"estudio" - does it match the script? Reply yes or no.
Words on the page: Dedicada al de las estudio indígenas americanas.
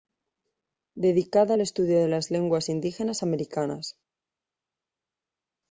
no